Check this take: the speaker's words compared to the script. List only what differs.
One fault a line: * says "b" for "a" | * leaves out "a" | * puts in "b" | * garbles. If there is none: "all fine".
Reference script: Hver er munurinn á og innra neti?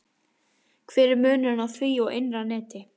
* puts in "því"